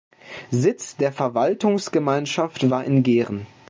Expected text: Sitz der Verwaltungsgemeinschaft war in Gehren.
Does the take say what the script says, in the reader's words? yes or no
yes